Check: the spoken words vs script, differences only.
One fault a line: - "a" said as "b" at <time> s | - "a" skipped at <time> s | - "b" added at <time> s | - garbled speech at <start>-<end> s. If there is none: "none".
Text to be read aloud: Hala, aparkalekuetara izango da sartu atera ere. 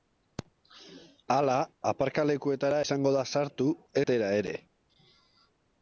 none